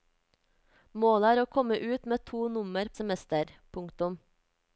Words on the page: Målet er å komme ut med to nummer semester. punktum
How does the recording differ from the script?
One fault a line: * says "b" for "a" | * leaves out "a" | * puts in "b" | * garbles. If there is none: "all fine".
all fine